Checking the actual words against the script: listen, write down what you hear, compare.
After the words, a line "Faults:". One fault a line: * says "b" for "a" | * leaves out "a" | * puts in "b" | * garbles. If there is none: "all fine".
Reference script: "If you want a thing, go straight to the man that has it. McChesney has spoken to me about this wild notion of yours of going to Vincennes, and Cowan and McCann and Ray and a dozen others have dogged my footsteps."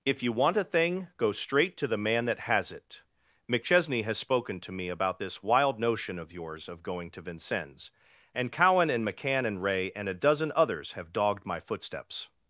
"If you want a thing, go straight to the man that has it. McChesney has spoken to me about this wild notion of yours of going to Vincennes, and Cowan and McCann and Ray and a dozen others have dogged my footsteps."
Faults:
all fine